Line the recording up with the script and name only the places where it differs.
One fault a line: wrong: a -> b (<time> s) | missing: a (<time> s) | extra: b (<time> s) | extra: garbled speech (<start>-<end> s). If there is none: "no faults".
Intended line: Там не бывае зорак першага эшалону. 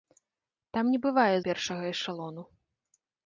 missing: зорак (1.4 s)